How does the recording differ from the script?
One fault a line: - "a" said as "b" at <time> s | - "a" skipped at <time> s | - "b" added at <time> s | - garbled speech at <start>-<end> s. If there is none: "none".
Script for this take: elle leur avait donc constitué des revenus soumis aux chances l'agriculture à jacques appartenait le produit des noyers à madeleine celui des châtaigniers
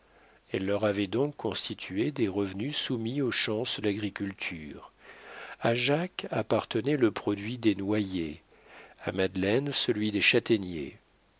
none